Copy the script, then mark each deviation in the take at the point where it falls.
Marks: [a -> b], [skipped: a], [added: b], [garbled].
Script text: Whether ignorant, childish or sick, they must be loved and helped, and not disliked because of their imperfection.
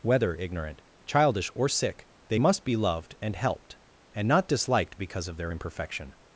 Whether ignorant, childish or sick, they must be loved and helped, and not disliked because of their imperfection.